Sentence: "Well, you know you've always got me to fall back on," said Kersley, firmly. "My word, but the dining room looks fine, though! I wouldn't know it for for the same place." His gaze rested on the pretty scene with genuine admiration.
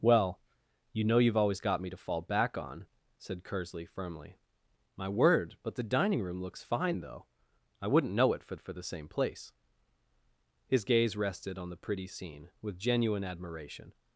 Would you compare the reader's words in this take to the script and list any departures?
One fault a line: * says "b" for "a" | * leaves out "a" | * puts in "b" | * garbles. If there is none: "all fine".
all fine